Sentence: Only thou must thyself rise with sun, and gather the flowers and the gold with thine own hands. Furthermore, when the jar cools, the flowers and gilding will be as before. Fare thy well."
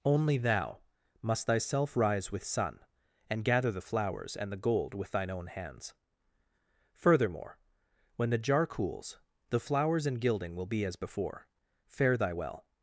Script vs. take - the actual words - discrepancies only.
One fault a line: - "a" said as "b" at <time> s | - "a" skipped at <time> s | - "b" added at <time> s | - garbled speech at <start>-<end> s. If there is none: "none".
none